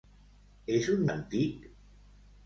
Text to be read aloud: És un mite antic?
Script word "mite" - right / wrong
wrong